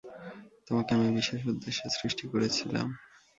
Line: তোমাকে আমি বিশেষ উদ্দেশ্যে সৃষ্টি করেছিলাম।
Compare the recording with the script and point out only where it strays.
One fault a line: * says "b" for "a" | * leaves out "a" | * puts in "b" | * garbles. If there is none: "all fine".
all fine